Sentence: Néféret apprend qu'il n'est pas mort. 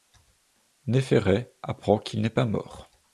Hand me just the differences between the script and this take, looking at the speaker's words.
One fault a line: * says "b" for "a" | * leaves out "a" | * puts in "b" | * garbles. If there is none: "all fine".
all fine